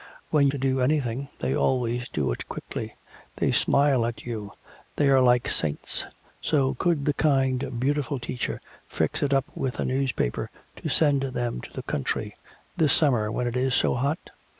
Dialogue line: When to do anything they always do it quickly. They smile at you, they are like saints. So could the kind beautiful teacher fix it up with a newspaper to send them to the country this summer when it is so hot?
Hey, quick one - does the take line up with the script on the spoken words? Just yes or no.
yes